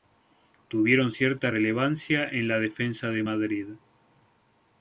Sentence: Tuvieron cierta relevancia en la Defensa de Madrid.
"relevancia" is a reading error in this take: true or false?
false